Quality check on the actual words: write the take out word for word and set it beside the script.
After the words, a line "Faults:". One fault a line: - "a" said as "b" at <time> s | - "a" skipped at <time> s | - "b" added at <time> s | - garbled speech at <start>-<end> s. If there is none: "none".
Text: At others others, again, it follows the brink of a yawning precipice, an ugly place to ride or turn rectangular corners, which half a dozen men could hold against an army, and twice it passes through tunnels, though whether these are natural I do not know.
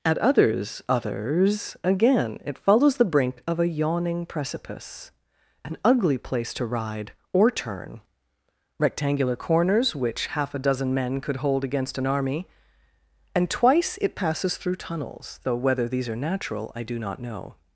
At others others, again, it follows the brink of a yawning precipice, an ugly place to ride or turn rectangular corners, which half a dozen men could hold against an army, and twice it passes through tunnels, though whether these are natural I do not know.
Faults:
none